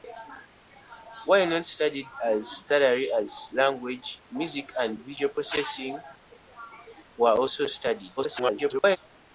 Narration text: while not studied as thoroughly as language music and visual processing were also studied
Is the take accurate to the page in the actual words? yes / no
no